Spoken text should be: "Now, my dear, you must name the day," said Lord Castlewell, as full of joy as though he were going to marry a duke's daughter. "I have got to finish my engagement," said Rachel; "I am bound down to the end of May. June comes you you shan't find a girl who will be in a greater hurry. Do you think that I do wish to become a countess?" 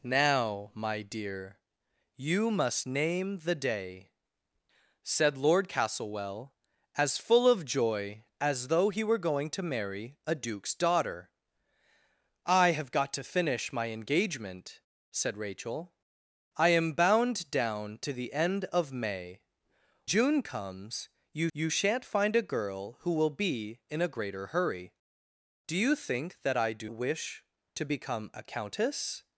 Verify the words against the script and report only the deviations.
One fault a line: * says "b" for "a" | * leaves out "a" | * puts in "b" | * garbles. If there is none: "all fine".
all fine